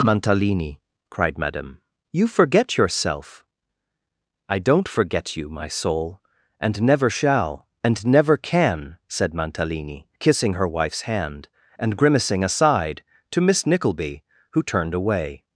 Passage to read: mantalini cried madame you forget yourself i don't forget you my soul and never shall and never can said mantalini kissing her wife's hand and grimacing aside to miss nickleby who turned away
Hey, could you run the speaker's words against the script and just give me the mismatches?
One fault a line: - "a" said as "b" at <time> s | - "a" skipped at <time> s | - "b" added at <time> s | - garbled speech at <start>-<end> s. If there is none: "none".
none